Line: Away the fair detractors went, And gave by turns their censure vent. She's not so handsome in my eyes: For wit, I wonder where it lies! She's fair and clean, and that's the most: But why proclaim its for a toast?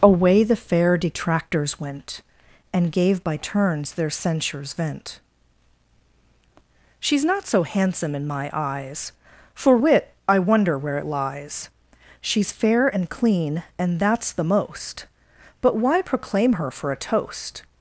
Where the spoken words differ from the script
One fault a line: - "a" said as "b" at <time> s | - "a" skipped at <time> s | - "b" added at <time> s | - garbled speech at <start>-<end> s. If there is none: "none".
- "censure" said as "censures" at 4.1 s
- "its" said as "her" at 16.5 s